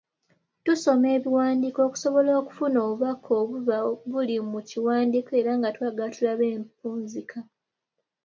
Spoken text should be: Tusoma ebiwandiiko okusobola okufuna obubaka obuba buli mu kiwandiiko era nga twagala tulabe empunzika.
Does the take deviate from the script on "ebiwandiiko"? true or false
false